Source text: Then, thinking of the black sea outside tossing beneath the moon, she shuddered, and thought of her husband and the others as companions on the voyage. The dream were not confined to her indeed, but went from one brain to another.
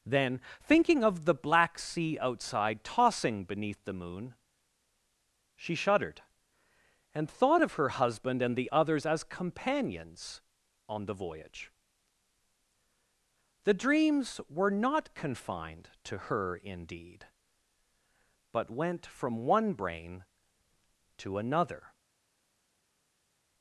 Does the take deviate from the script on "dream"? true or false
true